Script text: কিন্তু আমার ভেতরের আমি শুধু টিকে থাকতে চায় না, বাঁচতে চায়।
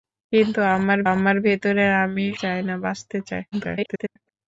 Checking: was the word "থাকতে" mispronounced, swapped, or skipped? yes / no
yes